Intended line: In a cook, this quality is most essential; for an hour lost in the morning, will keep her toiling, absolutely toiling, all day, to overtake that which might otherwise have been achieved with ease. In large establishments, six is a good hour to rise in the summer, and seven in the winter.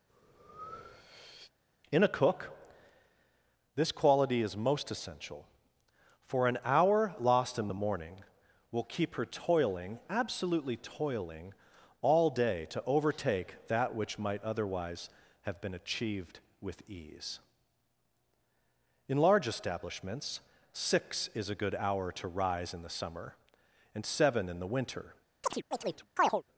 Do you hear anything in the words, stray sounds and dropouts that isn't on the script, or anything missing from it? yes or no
yes